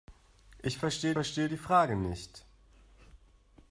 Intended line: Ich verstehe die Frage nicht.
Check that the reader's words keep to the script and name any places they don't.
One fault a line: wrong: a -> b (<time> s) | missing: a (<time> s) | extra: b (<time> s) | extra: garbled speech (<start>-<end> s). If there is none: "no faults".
extra: verstehe (1.1 s)